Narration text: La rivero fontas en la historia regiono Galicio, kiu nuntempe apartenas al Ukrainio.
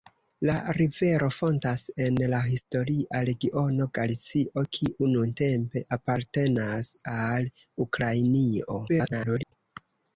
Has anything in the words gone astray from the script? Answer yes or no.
yes